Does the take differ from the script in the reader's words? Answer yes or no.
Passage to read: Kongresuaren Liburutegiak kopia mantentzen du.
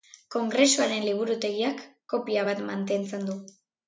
yes